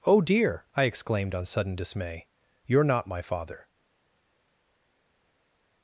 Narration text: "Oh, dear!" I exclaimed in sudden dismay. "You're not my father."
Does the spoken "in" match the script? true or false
false